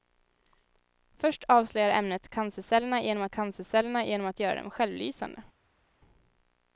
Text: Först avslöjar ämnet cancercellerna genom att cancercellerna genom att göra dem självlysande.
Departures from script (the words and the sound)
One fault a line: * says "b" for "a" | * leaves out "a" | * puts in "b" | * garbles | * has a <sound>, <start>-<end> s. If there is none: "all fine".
all fine